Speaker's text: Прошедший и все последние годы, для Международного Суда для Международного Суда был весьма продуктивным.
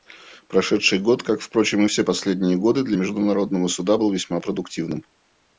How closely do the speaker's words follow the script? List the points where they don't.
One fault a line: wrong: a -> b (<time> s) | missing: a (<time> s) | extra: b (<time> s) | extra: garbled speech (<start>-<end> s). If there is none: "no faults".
extra: год как впрочем (1.0 s)
missing: для Международного Суда (4.0 s)